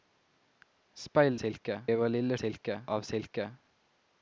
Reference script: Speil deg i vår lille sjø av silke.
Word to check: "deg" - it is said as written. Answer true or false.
false